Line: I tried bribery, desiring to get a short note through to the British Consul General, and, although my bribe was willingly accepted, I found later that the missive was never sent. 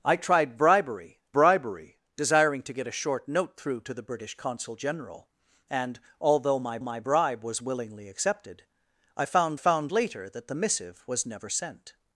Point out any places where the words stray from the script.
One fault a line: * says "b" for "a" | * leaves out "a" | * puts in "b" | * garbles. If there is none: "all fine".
* puts in "bribery"
* puts in "my"
* puts in "found"